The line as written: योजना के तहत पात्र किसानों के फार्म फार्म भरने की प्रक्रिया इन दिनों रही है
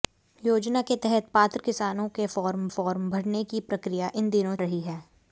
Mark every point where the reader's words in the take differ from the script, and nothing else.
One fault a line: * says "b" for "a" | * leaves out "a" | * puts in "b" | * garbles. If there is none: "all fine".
all fine